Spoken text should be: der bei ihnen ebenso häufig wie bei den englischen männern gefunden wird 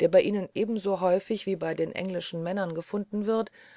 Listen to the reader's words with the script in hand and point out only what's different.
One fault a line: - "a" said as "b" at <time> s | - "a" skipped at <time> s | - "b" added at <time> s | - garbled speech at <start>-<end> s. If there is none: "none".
none